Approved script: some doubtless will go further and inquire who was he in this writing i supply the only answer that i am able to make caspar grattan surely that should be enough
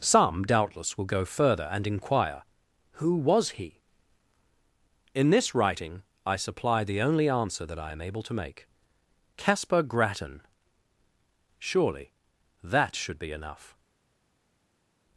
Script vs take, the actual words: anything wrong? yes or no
no